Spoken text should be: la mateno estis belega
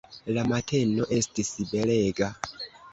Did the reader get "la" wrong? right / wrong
right